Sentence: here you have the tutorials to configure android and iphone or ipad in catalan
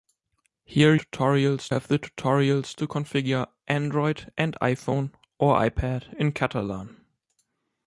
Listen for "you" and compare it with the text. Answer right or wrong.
wrong